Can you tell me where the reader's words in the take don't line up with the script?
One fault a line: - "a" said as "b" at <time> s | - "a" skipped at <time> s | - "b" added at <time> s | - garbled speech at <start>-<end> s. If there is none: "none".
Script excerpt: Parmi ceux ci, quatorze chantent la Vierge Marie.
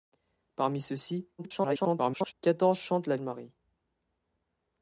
- garbled speech at 1.4-2.3 s
- "Vierge" skipped at 3.2 s